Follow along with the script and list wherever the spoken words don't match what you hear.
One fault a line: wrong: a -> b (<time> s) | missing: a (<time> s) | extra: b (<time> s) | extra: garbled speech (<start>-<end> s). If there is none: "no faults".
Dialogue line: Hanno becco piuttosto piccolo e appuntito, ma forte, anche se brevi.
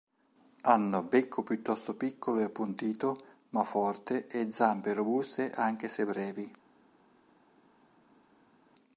extra: e zampe robuste (4.2 s)